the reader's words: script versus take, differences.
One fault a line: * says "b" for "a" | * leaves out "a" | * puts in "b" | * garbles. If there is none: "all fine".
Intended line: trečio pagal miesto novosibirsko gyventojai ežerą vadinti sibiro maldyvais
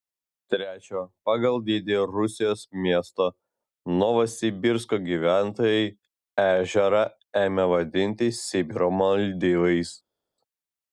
* puts in "dydį rusijos"
* puts in "ėmė"